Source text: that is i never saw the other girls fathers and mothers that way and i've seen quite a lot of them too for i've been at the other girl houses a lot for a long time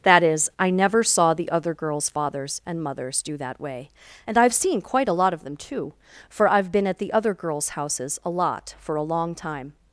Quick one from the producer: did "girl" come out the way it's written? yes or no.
no